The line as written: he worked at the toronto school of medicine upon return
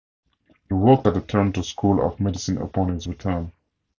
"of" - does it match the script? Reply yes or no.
yes